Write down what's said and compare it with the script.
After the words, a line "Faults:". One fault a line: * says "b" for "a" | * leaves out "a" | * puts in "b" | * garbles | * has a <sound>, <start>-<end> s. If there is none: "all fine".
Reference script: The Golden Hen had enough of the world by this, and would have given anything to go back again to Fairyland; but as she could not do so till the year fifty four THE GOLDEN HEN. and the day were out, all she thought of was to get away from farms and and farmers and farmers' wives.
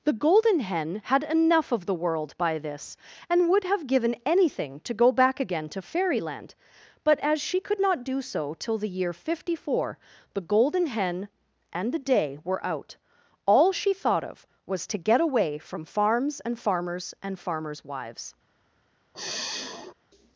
The Golden Hen had enough of the world by this, and would have given anything to go back again to Fairyland; but as she could not do so till the year fifty four THE GOLDEN HEN. and the day were out, all she thought of was to get away from farms and farmers and farmers' wives.
Faults:
* leaves out "and"
* has a sigh, 19.1-19.9 s